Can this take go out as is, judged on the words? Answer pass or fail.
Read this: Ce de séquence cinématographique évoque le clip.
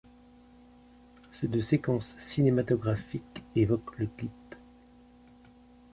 pass